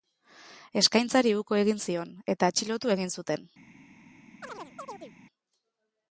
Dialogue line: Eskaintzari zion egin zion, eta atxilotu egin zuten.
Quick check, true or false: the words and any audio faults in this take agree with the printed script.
false